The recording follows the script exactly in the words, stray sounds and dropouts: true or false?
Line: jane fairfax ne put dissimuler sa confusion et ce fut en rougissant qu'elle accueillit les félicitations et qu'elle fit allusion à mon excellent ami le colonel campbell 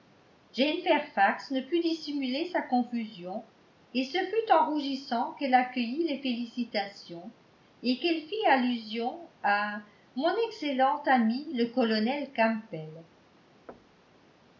false